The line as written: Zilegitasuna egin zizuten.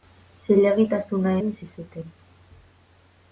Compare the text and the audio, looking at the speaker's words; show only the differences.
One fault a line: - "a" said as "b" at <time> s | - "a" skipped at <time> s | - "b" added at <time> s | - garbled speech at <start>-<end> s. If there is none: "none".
none